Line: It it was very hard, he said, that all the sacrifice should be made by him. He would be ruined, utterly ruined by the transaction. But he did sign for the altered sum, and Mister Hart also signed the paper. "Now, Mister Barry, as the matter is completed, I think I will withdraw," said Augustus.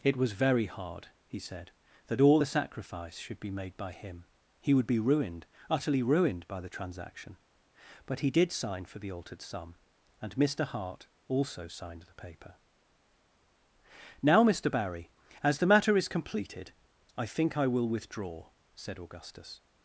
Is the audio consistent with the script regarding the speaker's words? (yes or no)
no